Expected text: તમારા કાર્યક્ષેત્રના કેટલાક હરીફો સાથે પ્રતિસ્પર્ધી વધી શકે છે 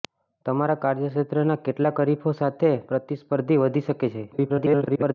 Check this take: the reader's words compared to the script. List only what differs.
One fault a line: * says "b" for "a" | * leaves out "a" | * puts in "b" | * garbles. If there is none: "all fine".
* garbles